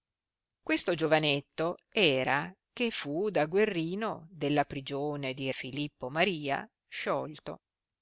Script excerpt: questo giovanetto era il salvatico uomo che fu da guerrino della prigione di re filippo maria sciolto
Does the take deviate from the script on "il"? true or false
true